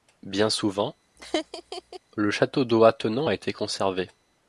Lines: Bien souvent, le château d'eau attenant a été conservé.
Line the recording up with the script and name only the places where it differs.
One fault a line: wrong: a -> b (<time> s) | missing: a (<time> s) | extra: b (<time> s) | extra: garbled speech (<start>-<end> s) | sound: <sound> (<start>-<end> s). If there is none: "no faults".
sound: laugh (1.2-2.0 s)